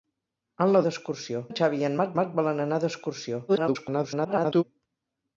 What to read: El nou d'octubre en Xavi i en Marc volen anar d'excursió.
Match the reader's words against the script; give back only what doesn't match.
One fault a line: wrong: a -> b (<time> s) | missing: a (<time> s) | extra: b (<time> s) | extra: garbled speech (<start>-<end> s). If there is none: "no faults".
wrong: d'octubre -> d'excursió (0.9 s)
extra: Marc (2.2 s)
extra: garbled speech (3.5-4.6 s)